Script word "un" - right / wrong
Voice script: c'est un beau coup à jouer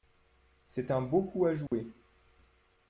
right